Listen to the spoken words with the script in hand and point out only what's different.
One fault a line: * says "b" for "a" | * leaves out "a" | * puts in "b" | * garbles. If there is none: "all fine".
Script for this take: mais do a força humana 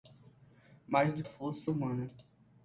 all fine